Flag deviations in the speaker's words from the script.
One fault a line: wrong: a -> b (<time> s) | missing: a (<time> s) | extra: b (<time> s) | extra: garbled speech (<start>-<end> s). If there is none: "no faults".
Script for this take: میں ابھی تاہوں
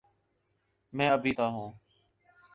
no faults